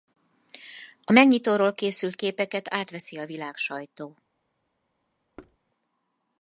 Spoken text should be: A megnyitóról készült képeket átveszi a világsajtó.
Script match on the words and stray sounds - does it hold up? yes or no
no